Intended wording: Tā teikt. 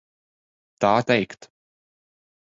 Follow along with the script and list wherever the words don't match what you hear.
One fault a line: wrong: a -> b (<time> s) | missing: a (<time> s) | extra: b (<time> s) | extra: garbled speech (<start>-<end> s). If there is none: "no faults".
no faults